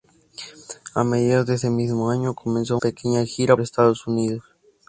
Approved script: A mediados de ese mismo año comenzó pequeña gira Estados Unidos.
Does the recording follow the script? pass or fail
pass